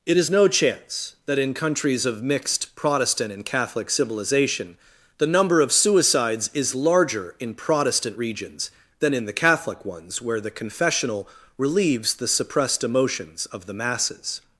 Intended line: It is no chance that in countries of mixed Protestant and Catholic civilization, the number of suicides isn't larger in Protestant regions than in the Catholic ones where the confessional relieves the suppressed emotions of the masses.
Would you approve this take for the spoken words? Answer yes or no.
no